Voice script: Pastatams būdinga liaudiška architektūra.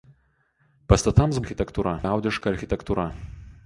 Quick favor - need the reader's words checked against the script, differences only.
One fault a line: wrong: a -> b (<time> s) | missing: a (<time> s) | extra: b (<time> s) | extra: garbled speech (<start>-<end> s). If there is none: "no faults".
wrong: būdinga -> architektūra (1.4 s)